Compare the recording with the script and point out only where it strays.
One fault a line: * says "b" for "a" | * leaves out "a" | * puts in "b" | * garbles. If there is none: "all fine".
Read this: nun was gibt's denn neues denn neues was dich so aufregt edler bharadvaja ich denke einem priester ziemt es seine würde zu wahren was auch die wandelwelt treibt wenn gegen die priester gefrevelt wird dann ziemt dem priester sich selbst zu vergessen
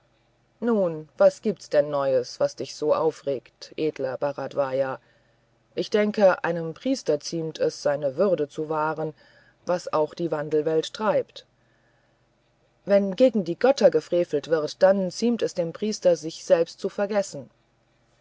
* leaves out "denn neues"
* says "götter" for "priester"
* puts in "es"